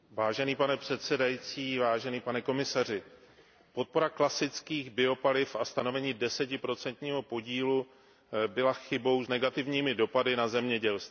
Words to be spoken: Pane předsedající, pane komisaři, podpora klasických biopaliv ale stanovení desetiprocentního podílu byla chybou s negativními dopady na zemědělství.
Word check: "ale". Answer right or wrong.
wrong